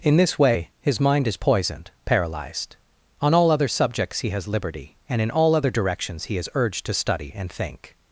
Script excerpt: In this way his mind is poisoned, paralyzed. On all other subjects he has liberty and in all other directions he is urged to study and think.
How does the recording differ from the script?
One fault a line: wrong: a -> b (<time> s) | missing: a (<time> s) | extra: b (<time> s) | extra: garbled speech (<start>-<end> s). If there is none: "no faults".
no faults